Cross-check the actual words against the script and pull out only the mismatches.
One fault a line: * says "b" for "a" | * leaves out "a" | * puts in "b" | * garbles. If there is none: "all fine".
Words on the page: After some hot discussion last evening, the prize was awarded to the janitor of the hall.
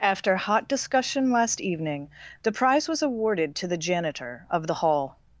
* leaves out "some"